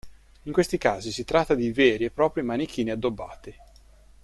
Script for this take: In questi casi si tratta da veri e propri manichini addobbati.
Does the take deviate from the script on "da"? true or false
true